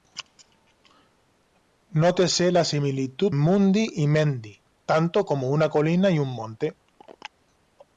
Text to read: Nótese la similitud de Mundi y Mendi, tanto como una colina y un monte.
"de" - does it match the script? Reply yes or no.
no